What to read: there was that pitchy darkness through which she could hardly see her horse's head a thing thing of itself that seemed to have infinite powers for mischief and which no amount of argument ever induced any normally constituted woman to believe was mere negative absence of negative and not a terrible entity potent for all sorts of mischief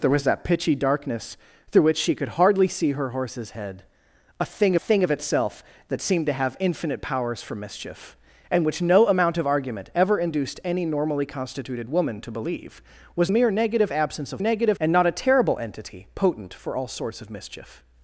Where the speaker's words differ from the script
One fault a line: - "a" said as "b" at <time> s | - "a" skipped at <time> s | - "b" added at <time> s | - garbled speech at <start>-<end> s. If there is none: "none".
none